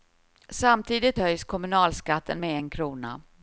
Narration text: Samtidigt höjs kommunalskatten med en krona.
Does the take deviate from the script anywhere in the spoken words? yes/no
no